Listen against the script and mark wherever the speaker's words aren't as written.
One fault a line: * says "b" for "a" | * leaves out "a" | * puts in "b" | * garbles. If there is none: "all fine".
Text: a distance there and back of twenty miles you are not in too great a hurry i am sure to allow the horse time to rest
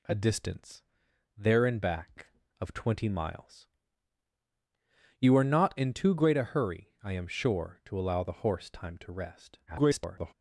* garbles